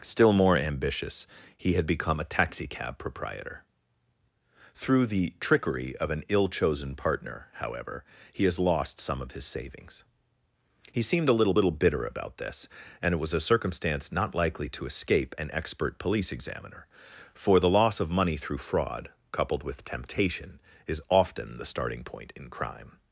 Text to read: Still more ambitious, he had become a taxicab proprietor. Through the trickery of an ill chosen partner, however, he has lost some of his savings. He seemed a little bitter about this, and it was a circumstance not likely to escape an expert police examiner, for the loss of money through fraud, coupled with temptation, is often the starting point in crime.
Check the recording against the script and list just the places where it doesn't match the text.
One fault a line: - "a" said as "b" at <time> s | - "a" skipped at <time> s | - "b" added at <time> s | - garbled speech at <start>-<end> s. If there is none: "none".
- "little" added at 11.5 s